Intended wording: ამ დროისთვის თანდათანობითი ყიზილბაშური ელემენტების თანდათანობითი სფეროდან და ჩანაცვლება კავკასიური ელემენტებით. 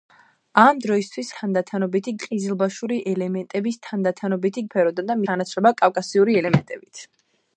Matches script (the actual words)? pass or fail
pass